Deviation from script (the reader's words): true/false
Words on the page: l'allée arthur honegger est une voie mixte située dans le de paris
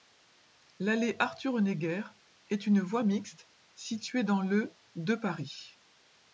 false